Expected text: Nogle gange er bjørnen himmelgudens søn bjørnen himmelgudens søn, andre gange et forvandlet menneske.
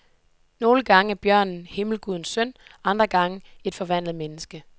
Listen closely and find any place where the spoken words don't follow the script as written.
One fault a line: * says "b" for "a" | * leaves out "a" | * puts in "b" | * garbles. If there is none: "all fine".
* leaves out "bjørnen himmelgudens søn"